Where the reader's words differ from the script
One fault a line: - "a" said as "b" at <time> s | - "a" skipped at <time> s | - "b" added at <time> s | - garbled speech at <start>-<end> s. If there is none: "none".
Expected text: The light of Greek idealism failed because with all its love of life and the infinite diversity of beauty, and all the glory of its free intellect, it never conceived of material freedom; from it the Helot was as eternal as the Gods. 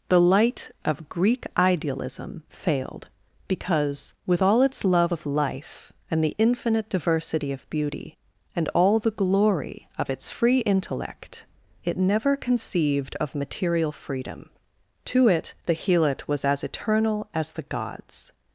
- "from" said as "to" at 15.1 s